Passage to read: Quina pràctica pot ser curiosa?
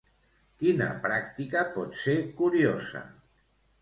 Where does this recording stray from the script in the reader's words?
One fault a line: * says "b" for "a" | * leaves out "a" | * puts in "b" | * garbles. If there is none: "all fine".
all fine